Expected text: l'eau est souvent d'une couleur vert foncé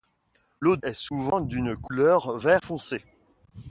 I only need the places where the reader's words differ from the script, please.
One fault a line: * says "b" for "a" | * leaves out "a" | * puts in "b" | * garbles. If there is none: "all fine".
all fine